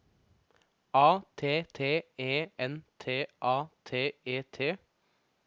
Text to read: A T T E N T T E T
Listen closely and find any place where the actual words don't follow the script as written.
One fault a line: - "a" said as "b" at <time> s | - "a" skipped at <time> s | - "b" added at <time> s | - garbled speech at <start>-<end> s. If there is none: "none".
- "A" added at 3.4 s